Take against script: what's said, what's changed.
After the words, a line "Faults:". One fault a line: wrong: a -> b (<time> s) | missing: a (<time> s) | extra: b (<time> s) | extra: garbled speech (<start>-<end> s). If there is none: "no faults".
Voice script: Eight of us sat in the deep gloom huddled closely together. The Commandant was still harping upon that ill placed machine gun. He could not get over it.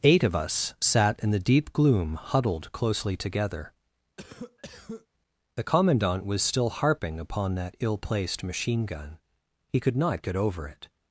Eight of us sat in the deep gloom huddled closely together. The Commandant was still harping upon that ill placed machine gun. He could not get over it.
Faults:
no faults